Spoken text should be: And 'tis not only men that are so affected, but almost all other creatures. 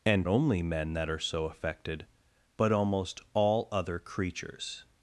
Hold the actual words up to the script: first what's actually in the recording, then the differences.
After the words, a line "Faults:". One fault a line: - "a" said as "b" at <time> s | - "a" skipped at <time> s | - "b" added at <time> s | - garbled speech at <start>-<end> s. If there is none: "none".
And 'only men that are so affected, but almost all other creatures.
Faults:
- "tis not" skipped at 0.3 s